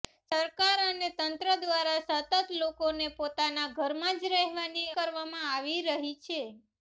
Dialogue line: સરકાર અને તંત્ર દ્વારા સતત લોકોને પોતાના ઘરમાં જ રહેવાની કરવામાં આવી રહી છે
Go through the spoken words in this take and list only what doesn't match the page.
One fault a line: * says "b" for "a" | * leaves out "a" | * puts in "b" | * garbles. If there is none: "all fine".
all fine